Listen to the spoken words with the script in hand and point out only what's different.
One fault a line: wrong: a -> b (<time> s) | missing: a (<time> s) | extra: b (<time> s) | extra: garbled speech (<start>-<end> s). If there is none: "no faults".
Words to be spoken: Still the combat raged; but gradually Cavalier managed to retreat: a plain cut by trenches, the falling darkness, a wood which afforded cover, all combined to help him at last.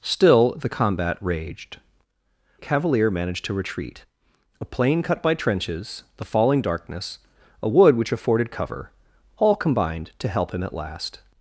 missing: but gradually (1.8 s)